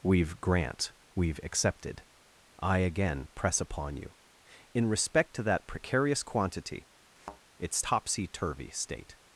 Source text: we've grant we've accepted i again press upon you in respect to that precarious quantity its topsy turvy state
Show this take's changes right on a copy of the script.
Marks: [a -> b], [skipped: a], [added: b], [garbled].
we've grant we've accepted i again press upon you in respect to that precarious quantity its topsy turvy state